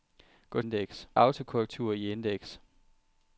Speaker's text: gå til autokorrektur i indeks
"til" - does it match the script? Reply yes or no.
no